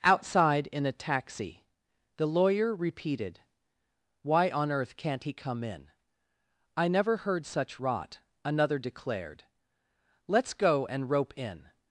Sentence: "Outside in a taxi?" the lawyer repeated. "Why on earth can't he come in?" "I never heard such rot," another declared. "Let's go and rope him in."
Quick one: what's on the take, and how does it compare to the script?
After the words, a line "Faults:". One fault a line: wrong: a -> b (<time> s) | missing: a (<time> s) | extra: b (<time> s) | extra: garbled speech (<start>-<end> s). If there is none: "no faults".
"Outside in a taxi?" the lawyer repeated. "Why on earth can't he come in?" "I never heard such rot," another declared. "Let's go and rope in."
Faults:
missing: him (11.4 s)